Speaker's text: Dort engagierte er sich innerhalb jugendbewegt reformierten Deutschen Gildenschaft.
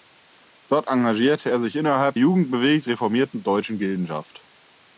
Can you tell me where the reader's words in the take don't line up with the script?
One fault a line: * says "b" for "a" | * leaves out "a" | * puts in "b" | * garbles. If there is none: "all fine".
all fine